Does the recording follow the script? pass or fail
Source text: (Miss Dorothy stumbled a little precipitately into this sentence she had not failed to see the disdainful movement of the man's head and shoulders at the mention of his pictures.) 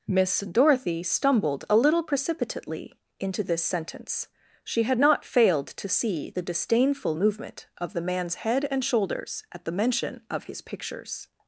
pass